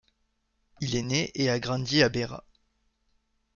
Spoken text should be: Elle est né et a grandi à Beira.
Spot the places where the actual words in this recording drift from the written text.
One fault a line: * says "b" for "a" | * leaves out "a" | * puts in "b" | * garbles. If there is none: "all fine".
* says "Il" for "Elle"